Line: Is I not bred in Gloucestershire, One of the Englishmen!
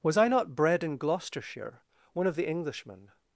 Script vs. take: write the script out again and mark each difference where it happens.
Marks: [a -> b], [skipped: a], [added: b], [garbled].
[Is -> Was] I not bred in Gloucestershire, One of the Englishmen!